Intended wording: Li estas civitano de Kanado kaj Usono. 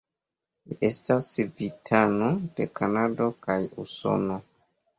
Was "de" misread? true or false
false